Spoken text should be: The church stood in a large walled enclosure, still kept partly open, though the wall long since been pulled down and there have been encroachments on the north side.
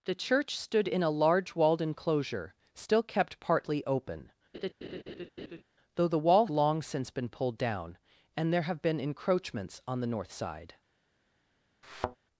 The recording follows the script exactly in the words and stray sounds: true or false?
false